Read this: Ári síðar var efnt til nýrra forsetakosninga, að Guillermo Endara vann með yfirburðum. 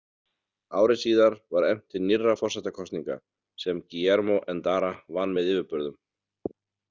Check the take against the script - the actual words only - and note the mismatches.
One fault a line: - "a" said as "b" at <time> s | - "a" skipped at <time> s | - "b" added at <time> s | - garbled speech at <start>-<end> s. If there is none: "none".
- "að" said as "sem" at 3.6 s